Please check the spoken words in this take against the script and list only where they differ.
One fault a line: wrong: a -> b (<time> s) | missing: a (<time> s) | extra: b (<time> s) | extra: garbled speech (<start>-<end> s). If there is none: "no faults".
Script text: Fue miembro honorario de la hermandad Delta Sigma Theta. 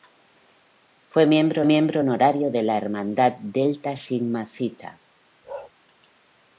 extra: miembro (1.6 s)